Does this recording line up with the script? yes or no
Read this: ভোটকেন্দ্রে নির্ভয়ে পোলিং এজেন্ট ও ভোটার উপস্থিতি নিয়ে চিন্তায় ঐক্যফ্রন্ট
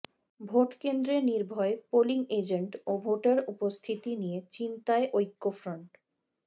yes